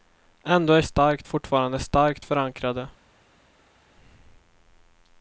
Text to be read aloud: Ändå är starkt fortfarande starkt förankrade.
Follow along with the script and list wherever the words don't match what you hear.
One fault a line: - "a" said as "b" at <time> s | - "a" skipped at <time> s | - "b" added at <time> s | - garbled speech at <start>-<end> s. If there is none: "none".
none